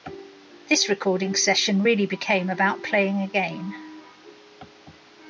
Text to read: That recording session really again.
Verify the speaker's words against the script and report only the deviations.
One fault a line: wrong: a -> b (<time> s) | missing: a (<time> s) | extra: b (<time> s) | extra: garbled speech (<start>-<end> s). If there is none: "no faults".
wrong: That -> This (0.7 s)
extra: became about playing (2.1 s)